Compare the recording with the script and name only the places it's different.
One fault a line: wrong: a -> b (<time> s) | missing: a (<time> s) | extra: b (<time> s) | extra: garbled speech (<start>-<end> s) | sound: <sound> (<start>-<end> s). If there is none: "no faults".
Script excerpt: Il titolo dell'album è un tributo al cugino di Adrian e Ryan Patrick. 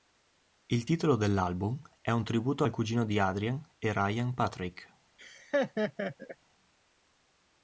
sound: laugh (5.2-6.4 s)